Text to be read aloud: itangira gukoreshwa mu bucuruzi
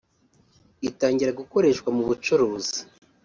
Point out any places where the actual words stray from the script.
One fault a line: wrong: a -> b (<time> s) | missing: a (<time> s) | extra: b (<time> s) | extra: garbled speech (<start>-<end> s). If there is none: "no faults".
no faults